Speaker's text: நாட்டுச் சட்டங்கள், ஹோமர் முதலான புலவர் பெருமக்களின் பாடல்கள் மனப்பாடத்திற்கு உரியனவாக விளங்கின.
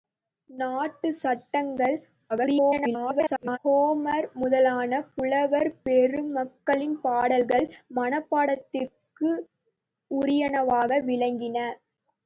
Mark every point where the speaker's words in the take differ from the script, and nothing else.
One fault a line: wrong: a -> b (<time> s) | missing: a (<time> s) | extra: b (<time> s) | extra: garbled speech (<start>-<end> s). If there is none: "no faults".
extra: garbled speech (2.3-3.6 s)